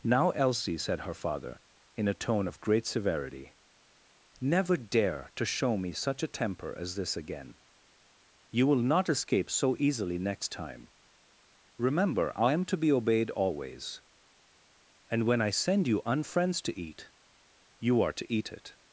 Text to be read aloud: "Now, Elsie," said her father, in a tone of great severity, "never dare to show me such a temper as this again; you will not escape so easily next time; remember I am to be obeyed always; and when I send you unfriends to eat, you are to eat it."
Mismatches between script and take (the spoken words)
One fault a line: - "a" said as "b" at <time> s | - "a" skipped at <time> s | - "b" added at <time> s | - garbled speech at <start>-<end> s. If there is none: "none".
none